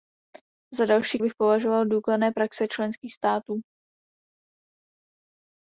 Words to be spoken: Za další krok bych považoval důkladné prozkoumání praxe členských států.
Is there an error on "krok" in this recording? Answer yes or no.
yes